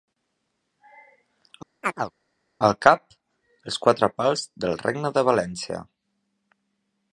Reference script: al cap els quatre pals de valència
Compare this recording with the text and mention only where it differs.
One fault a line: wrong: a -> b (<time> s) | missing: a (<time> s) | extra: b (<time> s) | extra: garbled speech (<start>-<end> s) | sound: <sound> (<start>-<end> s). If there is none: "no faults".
sound: chirp (1.8-2.1 s)
extra: del regne (4.7 s)